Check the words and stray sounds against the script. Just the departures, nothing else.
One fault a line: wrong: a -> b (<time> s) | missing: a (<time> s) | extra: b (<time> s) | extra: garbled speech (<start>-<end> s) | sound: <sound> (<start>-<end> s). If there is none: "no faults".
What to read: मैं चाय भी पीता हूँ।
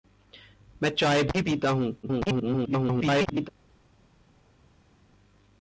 extra: garbled speech (2.0-3.5 s)